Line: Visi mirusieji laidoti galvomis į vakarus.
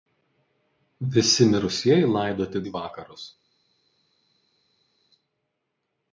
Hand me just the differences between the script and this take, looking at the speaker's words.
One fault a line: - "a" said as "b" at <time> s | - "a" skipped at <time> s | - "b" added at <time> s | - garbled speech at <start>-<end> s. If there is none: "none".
- "galvomis" skipped at 2.6 s